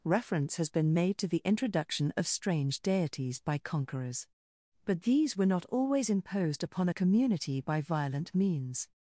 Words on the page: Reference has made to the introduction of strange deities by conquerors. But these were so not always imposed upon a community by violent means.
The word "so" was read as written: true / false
false